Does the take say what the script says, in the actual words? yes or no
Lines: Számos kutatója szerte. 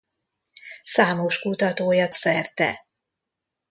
yes